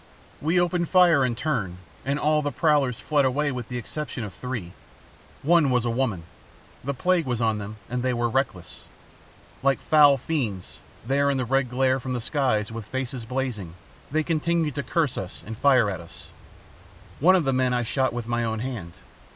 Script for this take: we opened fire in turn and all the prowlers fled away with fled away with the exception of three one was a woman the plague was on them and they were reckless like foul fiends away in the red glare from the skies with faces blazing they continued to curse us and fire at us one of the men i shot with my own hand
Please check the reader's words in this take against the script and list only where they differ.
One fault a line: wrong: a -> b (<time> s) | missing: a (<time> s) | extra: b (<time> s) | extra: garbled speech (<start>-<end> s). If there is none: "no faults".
missing: fled away with (3.7 s)
wrong: away -> there (11.0 s)